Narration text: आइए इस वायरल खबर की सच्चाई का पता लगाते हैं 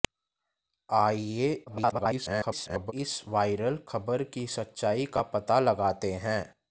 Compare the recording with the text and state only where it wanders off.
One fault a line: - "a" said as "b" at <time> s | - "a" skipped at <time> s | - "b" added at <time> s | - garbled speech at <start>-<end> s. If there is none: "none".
- garbled speech at 1.7-2.9 s